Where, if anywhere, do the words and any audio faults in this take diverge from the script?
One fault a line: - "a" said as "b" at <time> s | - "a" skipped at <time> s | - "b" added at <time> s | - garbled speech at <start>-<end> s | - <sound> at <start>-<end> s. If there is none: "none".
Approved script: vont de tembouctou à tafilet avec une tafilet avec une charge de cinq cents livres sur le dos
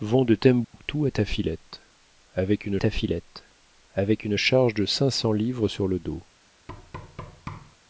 - dropout at 0.6-0.7 s
- thud at 6.7-7.8 s